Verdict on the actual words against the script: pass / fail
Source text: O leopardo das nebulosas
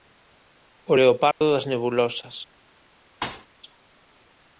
pass